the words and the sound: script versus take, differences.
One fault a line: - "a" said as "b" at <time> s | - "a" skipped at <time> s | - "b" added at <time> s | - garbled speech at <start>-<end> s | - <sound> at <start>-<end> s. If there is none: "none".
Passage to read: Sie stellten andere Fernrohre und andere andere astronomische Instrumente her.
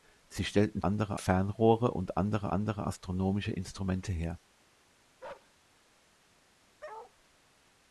- bark at 5.2-5.5 s
- bark at 6.8-7.1 s